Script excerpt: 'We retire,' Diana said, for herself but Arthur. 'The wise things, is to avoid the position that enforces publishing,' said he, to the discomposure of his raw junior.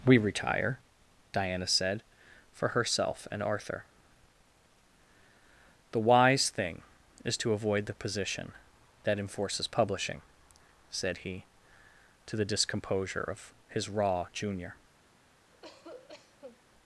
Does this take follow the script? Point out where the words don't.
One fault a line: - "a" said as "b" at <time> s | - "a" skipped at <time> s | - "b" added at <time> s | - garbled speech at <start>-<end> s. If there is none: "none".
- "but" said as "and" at 3.3 s
- "things" said as "thing" at 6.5 s